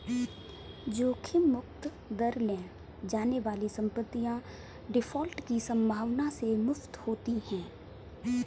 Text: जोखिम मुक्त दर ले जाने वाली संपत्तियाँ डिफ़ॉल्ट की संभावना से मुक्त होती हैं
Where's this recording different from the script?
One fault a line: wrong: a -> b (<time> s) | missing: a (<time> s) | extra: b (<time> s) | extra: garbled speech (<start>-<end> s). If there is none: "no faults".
no faults